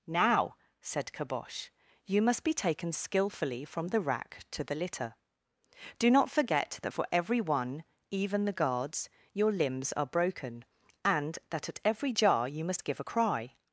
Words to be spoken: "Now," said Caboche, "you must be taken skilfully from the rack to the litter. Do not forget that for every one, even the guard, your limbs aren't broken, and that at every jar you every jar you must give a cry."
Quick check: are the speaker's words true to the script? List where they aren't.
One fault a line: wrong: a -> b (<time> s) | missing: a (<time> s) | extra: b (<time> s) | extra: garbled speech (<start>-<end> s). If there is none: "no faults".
wrong: guard -> guards (8.5 s)
wrong: aren't -> are (9.9 s)
missing: every jar you (12.6 s)